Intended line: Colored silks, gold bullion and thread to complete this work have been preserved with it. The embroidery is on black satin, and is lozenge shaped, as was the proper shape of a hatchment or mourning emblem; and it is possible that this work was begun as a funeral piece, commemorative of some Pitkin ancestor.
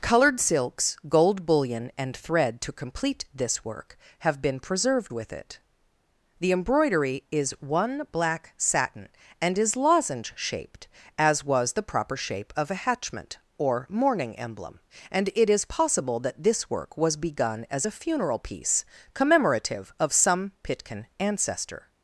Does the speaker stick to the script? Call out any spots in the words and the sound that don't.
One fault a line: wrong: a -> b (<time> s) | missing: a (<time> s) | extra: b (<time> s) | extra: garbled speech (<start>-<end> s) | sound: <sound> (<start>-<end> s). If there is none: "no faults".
wrong: on -> one (7.6 s)